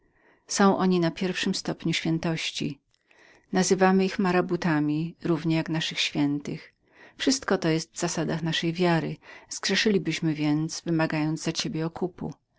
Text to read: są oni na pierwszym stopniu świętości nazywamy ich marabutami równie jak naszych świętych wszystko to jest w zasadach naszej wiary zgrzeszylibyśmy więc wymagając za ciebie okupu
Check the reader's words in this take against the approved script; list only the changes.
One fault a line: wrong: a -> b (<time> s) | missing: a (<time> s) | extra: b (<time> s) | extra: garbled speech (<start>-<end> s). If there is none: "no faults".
no faults